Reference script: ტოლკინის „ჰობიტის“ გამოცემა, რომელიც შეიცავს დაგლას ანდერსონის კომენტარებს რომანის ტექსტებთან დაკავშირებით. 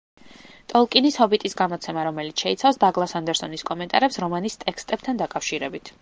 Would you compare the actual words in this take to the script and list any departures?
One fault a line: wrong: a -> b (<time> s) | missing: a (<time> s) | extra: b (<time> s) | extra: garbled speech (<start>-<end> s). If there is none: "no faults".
no faults